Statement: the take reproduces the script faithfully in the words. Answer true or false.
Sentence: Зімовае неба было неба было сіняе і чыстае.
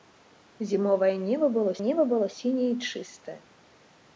true